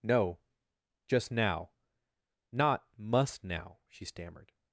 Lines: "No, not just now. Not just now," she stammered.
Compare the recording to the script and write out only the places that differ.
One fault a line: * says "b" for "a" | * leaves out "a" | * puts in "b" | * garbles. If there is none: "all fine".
* leaves out "not"
* says "must" for "just"